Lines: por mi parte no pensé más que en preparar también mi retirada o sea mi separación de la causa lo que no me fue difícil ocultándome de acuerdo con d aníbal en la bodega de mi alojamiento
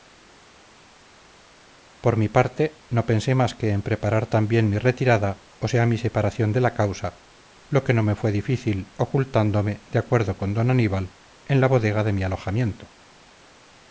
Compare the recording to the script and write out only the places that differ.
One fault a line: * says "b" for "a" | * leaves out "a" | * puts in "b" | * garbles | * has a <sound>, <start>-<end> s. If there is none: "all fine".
all fine